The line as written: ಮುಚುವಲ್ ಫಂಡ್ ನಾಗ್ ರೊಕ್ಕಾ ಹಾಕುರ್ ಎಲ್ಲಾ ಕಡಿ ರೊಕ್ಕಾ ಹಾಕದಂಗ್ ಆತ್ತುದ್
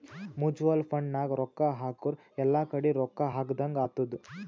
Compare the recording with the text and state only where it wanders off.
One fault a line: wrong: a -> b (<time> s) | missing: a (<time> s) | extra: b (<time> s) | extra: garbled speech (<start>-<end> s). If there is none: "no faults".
no faults